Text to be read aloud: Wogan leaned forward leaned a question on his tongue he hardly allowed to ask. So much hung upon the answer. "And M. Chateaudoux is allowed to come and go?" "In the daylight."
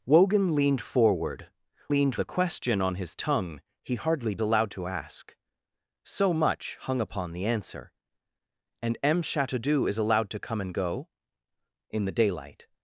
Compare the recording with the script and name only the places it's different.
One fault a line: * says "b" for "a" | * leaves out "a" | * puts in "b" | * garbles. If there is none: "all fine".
all fine